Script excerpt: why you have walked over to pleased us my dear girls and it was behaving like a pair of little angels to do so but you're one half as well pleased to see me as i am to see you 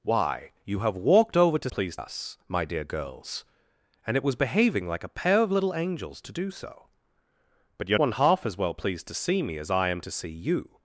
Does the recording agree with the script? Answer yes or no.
yes